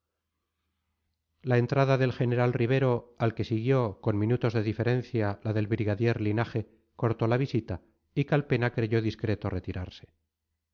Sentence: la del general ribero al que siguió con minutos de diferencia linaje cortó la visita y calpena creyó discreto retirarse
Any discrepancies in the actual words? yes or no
yes